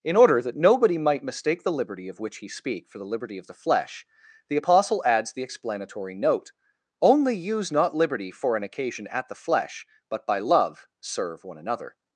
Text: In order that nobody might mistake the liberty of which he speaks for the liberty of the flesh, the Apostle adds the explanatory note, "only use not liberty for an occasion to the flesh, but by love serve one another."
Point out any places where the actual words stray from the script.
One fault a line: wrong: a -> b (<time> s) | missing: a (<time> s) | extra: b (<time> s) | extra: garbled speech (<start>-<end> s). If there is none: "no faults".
wrong: speaks -> speak (2.5 s)
wrong: to -> at (9.1 s)